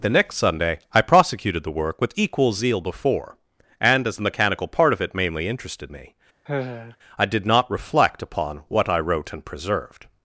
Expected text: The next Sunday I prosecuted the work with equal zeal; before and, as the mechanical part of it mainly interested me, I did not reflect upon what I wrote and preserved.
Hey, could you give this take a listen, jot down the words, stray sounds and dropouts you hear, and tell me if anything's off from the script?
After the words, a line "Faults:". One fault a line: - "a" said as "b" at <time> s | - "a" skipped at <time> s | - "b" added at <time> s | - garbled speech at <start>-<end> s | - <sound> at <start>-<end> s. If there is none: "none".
The next Sunday I prosecuted the work with equal zeal; before and, as the mechanical part of it mainly interested me, I did not reflect upon what I wrote and preserved.
Faults:
- sigh at 6.5-7.0 s